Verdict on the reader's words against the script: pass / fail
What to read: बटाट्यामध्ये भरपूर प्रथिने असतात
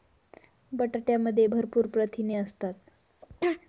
pass